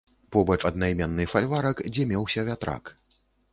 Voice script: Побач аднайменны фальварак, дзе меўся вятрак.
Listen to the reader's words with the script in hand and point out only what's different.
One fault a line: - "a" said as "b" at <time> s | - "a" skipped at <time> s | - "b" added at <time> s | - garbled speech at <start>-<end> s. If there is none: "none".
none